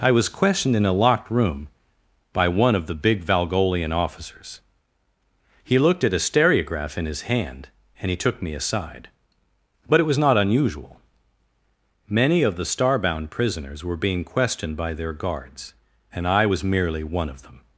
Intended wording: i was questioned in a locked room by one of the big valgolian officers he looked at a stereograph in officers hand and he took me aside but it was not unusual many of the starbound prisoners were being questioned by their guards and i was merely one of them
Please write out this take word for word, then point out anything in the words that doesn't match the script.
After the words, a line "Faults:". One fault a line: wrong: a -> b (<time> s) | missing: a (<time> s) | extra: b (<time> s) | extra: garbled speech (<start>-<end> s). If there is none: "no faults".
i was questioned in a locked room by one of the big valgolian officers he looked at a stereograph in his hand and he took me aside but it was not unusual many of the starbound prisoners were being questioned by their guards and i was merely one of them
Faults:
wrong: officers -> his (7.0 s)